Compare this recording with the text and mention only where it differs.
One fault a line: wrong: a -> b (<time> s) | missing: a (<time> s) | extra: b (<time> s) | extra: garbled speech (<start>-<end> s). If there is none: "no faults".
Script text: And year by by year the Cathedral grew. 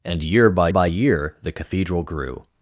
no faults